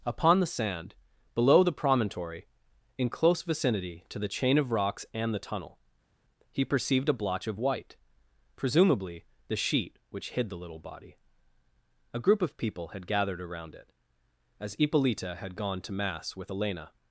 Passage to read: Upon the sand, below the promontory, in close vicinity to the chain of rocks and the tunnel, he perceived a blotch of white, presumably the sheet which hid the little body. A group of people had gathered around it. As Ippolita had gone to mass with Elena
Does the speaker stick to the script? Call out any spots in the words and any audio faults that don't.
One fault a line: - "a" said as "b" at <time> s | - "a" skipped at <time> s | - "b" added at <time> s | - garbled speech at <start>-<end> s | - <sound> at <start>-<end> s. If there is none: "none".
none